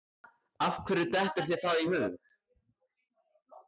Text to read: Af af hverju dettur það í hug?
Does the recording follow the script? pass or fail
fail